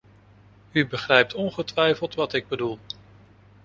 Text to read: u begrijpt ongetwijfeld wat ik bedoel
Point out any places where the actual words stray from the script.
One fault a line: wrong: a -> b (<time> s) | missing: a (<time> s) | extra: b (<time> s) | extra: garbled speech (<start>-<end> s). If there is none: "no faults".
no faults